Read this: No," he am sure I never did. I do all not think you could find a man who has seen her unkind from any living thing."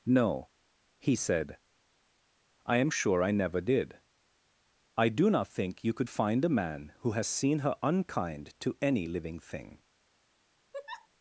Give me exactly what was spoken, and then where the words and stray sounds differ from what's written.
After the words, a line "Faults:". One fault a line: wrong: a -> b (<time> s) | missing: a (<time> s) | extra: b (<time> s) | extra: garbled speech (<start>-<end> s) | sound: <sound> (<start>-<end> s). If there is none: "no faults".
No," he said," I am sure I never did. I do not think you could find a man who has seen her unkind to any living thing."
Faults:
extra: said I (1.1 s)
missing: all (5.3 s)
wrong: from -> to (8.6 s)
sound: laugh (10.7-11.1 s)